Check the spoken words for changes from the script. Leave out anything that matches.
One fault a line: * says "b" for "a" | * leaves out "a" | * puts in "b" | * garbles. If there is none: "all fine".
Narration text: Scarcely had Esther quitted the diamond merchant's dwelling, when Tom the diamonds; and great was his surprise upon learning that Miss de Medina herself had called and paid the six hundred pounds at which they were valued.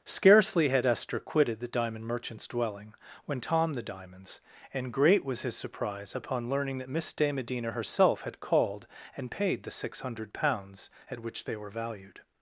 all fine